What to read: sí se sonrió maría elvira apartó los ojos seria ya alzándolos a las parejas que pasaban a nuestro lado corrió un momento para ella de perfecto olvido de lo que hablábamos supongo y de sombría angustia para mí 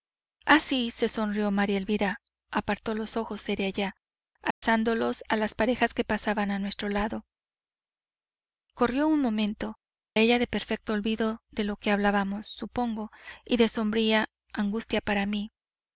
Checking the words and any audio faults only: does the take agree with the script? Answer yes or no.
no